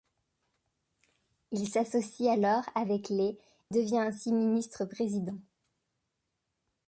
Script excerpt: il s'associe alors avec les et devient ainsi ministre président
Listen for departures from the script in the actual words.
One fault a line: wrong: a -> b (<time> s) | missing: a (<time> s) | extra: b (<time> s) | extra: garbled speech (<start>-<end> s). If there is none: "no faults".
missing: et (3.4 s)